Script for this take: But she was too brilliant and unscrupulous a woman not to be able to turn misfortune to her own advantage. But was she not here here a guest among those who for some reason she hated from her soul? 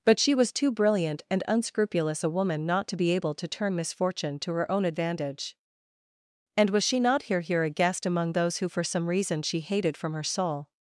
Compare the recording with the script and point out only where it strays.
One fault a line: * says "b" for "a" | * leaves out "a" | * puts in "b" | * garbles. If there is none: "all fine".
* says "And" for "But"